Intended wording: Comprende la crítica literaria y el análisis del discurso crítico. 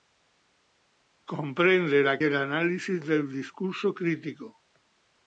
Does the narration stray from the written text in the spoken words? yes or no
yes